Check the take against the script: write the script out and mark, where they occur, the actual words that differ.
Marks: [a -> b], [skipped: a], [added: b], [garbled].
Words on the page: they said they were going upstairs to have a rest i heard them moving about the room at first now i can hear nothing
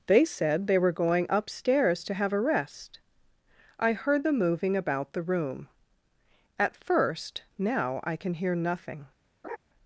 they said they were going upstairs to have a rest i heard them moving about the room at first now i can hear nothing